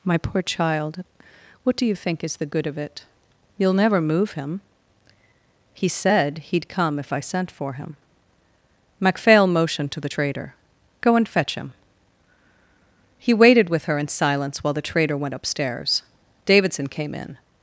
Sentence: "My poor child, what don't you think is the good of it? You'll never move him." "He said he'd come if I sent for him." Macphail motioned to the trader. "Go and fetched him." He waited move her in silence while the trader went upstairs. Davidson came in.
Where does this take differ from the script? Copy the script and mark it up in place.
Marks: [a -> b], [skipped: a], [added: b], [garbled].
"My poor child, what [don't -> do] you think is the good of it? You'll never move him." "He said he'd come if I sent for him." Macphail motioned to the trader. "Go and [fetched -> fetch] him." He waited [move -> with] her in silence while the trader went upstairs. Davidson came in.